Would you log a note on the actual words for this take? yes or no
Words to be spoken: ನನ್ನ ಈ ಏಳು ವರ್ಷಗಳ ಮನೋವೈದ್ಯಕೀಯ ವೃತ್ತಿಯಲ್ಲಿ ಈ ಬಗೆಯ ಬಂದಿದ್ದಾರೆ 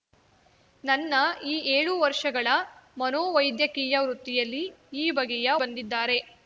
no